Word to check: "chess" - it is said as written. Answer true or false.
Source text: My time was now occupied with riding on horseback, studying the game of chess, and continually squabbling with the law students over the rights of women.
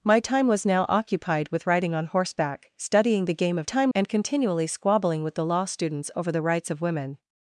false